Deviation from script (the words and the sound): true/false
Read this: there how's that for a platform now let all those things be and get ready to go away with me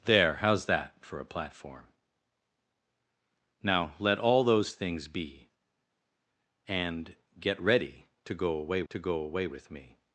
true